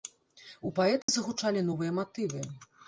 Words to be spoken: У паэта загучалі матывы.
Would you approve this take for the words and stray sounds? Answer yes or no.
no